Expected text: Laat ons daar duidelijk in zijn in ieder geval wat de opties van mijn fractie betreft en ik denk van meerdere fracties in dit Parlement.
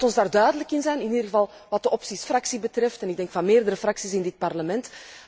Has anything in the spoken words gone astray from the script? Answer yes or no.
yes